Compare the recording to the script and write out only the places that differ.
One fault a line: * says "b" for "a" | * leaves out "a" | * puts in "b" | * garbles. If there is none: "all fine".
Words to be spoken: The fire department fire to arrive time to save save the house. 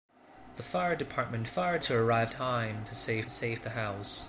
all fine